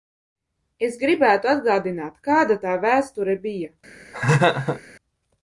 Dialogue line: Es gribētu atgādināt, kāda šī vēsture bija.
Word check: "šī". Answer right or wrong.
wrong